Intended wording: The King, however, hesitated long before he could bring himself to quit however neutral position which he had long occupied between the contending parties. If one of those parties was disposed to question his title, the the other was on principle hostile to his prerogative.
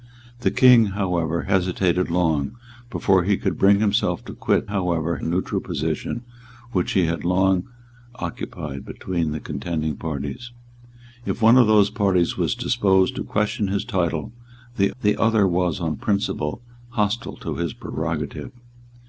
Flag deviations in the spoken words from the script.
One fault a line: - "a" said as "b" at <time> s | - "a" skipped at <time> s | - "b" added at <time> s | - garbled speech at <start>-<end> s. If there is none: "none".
none